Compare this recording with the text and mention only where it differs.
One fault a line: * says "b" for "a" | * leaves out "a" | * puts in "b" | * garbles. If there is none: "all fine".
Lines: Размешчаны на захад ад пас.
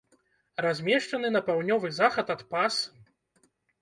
* puts in "паўднёвы"